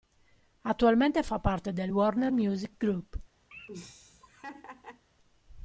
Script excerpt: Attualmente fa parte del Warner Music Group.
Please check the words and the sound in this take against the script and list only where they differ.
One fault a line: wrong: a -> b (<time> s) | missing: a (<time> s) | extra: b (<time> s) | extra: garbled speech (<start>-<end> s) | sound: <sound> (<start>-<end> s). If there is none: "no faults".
sound: laugh (3.5-5.0 s)